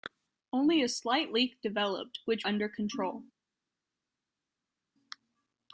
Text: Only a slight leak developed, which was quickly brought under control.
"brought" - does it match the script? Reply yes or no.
no